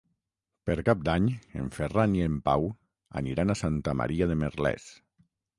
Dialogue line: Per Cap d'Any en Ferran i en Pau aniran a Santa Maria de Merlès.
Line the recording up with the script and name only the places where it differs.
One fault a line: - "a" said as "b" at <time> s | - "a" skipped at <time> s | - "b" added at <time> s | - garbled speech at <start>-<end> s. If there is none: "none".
none